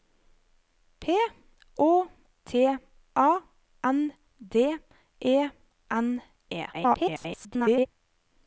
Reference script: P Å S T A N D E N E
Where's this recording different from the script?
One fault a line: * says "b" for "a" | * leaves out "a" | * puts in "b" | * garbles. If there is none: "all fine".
* leaves out "S"
* garbles